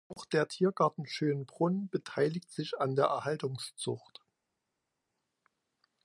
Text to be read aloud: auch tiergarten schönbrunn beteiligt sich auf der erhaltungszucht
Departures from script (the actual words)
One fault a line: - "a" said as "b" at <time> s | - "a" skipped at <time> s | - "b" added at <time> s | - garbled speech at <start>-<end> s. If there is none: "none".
- "der" added at 0.2 s
- "auf" said as "an" at 2.8 s